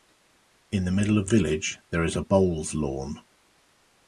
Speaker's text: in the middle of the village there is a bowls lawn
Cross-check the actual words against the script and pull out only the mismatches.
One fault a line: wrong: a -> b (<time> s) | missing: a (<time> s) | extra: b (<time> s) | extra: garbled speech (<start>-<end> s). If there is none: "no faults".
missing: the (1.3 s)